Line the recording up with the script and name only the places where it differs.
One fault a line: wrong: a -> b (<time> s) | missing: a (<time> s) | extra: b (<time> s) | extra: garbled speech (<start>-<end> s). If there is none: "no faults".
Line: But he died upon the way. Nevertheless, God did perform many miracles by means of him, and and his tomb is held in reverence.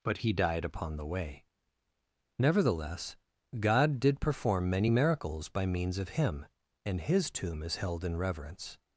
missing: and (7.0 s)